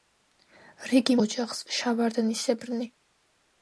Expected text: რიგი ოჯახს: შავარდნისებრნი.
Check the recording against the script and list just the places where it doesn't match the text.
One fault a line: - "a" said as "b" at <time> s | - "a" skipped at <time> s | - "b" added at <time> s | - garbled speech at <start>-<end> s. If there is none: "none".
none